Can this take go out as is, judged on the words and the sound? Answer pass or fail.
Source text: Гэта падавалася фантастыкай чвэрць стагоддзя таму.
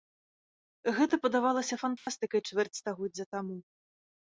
fail